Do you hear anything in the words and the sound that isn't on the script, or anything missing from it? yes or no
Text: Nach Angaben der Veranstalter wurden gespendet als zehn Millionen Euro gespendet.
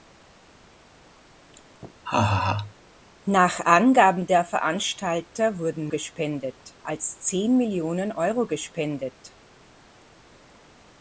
yes